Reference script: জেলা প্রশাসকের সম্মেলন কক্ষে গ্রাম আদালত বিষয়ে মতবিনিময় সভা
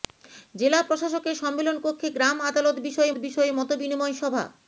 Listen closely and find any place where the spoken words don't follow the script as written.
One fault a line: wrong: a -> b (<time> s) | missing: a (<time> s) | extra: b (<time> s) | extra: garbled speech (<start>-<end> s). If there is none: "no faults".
extra: বিষয়ে (3.2 s)